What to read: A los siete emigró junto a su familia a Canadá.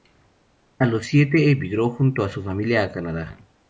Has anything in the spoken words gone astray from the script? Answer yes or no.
no